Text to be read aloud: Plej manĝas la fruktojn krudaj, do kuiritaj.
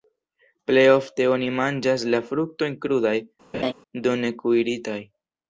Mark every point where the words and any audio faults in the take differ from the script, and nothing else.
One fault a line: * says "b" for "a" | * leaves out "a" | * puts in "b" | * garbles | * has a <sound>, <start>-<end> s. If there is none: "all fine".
* puts in "ofte oni"
* has a laugh, 3.5-3.7 s
* puts in "ne"